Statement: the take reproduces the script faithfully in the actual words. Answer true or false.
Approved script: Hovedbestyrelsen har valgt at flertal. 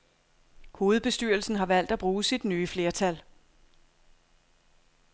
false